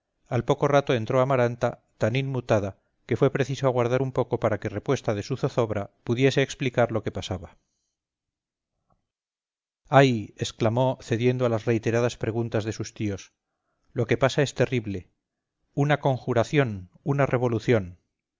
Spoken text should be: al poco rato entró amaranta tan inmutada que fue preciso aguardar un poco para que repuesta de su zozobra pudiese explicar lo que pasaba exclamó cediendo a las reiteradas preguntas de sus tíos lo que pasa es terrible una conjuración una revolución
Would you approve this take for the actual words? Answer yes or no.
no